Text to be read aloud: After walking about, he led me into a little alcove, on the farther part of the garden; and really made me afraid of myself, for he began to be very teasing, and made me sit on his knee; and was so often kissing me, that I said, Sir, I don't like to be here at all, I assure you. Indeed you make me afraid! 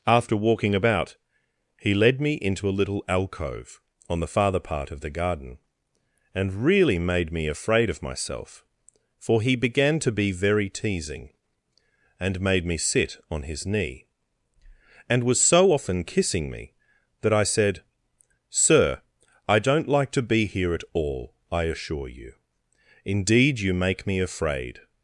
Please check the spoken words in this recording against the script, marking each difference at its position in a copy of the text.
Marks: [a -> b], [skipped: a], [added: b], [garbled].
After walking about, he led me into a little alcove, on the farther part of the garden; and really made me afraid of myself, for he began to be very teasing, and made me sit on his knee; and was so often kissing me, that I said, Sir, I don't like to be here at all, I assure you. Indeed you make me afraid!